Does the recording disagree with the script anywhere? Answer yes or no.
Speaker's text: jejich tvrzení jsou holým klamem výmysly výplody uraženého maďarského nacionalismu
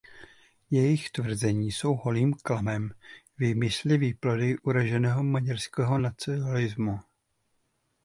no